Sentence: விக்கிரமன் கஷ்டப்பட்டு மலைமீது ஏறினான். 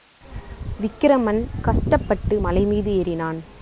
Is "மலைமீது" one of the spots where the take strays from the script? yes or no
no